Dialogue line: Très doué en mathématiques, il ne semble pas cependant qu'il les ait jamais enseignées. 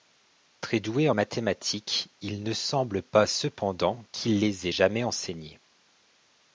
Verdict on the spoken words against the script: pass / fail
pass